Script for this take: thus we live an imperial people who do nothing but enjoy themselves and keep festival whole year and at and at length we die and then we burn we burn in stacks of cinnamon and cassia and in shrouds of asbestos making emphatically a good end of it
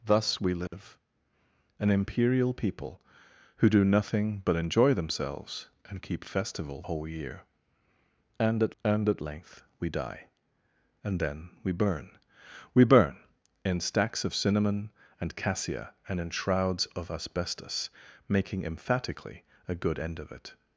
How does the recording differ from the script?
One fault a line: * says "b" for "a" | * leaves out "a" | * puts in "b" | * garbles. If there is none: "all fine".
all fine